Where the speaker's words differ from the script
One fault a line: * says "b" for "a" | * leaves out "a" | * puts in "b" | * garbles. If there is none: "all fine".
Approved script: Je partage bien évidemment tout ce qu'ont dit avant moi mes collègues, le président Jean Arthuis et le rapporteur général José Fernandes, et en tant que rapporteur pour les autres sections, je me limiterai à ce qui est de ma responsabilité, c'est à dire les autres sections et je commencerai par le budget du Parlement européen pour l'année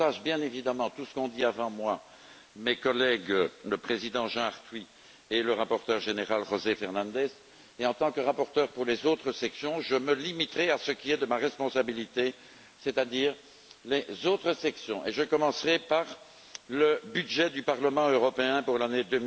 all fine